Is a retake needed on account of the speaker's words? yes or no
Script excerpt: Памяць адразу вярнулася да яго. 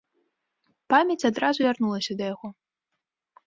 no